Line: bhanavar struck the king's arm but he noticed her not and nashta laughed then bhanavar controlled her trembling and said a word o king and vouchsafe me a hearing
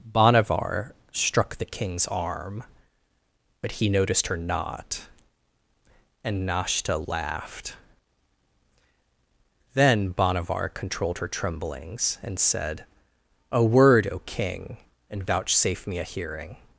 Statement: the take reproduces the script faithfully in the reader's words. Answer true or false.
false